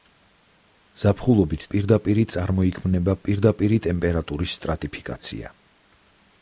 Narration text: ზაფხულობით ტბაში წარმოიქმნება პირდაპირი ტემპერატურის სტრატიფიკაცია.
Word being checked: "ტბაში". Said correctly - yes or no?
no